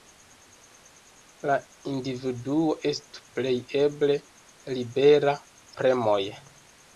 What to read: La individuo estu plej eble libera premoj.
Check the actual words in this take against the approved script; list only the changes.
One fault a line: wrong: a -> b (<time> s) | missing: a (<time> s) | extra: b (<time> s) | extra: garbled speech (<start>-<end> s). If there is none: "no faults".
no faults